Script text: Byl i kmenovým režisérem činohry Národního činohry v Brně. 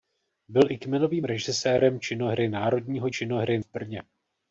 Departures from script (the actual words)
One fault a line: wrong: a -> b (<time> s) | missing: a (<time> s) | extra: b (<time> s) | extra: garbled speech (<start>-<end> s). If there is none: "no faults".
no faults